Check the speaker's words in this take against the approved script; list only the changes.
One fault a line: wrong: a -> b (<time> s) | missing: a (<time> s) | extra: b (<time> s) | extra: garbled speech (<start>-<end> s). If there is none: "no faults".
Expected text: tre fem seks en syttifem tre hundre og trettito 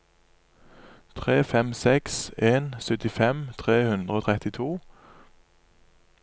no faults